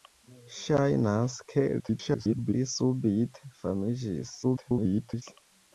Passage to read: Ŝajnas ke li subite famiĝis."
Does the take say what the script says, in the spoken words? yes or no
no